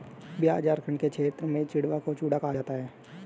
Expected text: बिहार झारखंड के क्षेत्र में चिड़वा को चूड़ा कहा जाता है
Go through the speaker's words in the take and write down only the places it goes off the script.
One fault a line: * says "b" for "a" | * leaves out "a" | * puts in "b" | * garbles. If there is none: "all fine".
all fine